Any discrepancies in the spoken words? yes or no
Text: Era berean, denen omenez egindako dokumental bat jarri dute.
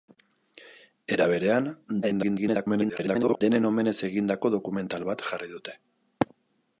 yes